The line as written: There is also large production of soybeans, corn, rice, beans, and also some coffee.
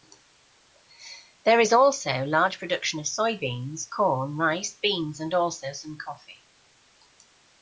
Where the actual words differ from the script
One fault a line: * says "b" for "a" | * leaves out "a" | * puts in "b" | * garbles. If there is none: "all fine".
all fine